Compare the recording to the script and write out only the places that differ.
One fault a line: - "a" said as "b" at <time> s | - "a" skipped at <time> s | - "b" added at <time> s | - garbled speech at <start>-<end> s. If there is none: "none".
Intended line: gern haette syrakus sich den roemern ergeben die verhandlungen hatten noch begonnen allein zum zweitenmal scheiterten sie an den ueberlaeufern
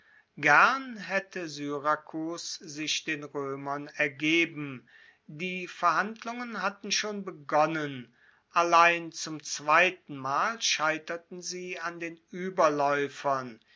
- "noch" said as "schon" at 6.9 s